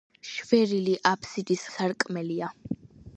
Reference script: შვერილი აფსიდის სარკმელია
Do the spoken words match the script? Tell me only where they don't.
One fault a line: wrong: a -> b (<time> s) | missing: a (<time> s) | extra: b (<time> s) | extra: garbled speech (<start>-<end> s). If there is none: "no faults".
no faults